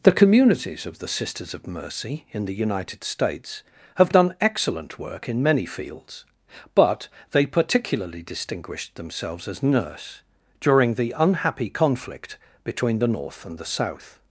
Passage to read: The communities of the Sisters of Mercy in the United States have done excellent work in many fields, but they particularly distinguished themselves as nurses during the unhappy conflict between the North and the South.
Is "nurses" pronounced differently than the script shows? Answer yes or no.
yes